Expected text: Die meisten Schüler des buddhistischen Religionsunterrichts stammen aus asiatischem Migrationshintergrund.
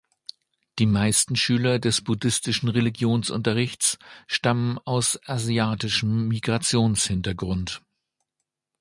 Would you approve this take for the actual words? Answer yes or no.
yes